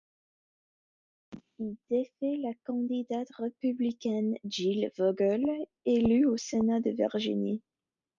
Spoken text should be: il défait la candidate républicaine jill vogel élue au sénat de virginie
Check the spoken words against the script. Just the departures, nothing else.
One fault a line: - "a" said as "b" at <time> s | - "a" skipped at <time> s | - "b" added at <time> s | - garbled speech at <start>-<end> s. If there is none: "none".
none